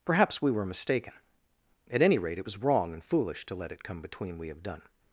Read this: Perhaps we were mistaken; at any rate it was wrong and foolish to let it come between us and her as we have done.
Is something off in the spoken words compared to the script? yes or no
yes